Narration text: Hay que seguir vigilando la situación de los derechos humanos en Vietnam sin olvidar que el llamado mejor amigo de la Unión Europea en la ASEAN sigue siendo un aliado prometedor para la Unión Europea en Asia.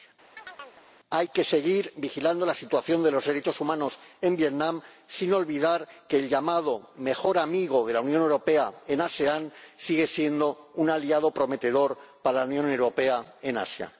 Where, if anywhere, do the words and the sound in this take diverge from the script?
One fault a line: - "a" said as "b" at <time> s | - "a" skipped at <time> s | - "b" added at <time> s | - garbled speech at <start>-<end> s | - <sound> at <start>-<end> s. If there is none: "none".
- chirp at 0.4-0.9 s